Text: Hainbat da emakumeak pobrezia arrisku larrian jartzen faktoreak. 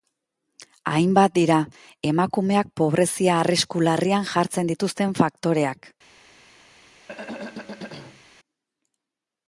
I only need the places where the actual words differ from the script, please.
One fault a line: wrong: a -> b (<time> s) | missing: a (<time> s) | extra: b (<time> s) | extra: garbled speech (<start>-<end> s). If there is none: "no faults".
wrong: da -> dira (1.4 s)
extra: dituzten (4.7 s)